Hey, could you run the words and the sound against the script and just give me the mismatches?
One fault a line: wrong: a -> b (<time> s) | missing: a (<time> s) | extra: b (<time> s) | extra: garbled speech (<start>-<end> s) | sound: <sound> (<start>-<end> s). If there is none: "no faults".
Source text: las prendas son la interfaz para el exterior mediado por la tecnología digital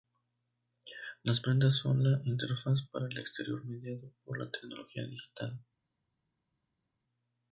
no faults